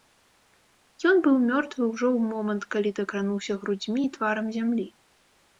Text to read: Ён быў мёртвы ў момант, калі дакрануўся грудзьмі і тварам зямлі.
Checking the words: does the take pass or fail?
fail